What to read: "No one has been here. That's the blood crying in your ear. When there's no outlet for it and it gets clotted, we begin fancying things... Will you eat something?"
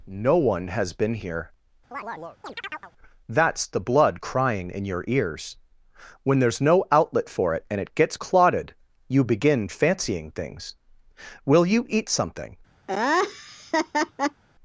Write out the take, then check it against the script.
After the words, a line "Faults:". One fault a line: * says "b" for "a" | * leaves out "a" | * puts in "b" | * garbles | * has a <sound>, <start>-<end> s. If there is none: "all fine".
"No one has been here. That's the blood crying in your ears. When there's no outlet for it and it gets clotted, you begin fancying things... Will you eat something?"
Faults:
* has a chirp, 1.9-2.9 s
* says "ears" for "ear"
* says "you" for "we"
* has a laugh, 12.9-14.4 s